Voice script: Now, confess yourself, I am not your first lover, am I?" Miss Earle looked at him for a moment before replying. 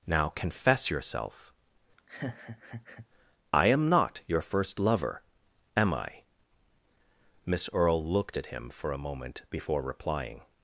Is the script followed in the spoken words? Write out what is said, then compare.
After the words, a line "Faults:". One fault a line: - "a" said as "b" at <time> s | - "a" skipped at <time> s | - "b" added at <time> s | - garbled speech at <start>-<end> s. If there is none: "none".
Now, confess yourself, I am not your first lover, am I?" Miss Earle looked at him for a moment before replying.
Faults:
none